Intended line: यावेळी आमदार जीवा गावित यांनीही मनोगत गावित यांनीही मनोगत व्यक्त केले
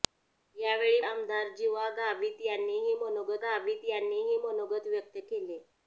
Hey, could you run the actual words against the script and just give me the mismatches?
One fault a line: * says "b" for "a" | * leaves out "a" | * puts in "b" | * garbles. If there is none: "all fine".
all fine